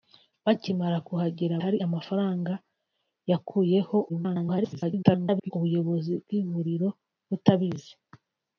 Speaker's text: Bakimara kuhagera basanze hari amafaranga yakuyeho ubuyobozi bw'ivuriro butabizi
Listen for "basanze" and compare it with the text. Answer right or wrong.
wrong